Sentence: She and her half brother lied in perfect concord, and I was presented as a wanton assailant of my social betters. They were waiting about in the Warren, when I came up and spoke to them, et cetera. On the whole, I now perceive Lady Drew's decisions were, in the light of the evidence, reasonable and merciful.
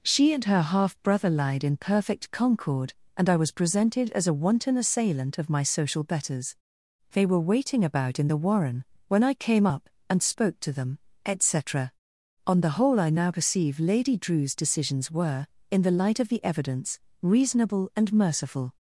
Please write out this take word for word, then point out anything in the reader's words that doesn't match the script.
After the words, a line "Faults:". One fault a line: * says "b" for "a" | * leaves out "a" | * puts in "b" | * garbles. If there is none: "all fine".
She and her half brother lied in perfect concord, and I was presented as a wanton assailant of my social betters. They were waiting about in the Warren, when I came up and spoke to them, et cetera. On the whole, I now perceive Lady Drew's decisions were, in the light of the evidence, reasonable and merciful.
Faults:
all fine